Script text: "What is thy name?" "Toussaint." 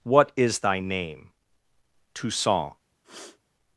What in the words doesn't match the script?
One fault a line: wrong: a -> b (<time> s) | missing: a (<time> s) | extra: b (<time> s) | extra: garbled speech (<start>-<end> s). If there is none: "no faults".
no faults